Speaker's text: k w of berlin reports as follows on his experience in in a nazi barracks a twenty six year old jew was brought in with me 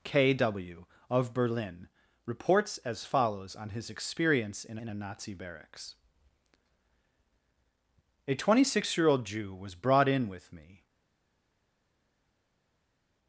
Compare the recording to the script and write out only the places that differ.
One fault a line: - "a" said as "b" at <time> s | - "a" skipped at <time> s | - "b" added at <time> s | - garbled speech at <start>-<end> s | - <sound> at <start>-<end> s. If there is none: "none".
none